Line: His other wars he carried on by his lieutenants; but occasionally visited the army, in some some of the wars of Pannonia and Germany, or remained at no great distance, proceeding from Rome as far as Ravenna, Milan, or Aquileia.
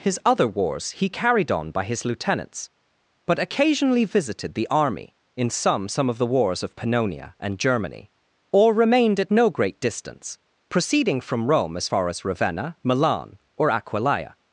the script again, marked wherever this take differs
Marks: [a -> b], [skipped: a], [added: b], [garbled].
His other wars he carried on by his lieutenants; but occasionally visited the army, in some some of the wars of Pannonia and Germany, or remained at no great distance, proceeding from Rome as far as Ravenna, Milan, or Aquileia.